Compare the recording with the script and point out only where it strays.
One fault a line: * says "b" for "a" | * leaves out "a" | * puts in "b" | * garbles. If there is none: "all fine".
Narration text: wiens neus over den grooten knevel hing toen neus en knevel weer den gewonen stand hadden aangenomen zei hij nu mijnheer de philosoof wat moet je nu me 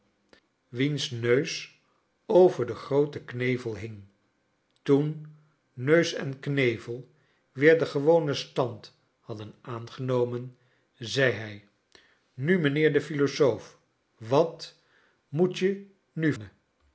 all fine